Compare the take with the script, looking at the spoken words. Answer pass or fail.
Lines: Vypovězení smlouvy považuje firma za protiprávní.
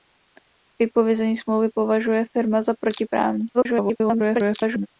fail